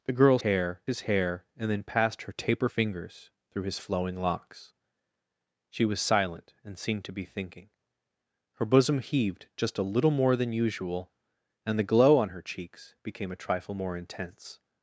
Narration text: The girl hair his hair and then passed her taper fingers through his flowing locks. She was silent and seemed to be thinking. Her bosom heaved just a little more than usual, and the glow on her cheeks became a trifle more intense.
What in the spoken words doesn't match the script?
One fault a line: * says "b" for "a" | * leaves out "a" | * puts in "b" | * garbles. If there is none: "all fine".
all fine